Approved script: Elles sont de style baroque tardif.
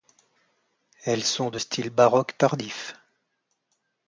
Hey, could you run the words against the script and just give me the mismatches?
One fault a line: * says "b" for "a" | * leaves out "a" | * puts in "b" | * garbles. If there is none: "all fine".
all fine